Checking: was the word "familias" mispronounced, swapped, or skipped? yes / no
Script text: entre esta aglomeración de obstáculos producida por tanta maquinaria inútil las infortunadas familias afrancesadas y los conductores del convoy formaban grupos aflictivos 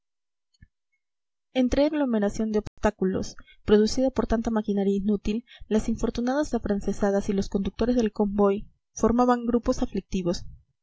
yes